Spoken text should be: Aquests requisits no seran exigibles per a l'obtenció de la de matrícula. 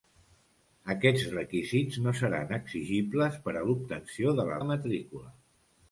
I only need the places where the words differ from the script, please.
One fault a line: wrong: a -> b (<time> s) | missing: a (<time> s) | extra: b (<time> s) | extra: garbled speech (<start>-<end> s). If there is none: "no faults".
no faults